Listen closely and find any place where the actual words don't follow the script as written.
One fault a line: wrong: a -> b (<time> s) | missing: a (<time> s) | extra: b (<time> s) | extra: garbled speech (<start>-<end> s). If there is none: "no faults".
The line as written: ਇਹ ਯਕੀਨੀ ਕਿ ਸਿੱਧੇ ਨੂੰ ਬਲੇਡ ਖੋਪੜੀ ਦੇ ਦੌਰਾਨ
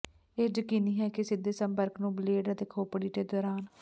extra: ਹੈ (1.0 s)
extra: ਸੰਪਰਕ (1.5 s)
extra: ਅਤੇ (2.5 s)